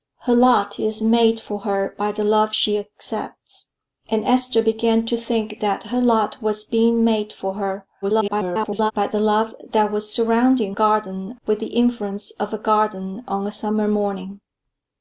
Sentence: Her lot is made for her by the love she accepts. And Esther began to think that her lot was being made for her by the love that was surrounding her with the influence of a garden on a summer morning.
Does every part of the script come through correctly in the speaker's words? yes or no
no